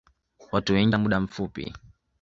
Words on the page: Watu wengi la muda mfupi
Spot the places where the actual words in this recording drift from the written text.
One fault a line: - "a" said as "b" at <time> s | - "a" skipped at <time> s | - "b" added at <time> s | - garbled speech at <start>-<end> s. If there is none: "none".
none